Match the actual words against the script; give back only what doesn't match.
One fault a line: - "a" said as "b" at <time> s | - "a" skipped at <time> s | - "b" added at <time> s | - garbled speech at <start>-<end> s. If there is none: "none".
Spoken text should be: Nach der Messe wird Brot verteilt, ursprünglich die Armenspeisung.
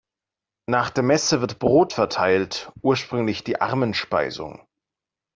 none